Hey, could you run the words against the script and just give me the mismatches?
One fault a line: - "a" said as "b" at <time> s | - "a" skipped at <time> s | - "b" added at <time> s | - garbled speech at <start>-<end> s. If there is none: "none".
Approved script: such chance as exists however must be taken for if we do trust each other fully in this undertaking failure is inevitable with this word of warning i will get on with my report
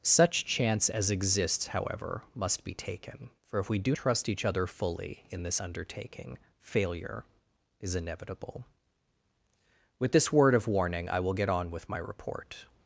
none